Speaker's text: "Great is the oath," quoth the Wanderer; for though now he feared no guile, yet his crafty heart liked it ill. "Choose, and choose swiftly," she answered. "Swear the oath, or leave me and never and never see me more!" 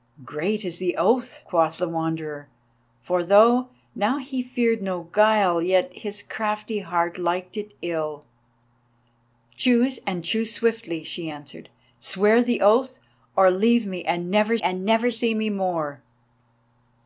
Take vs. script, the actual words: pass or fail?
pass